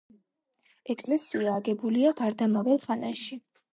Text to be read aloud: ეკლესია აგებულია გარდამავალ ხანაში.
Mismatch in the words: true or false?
false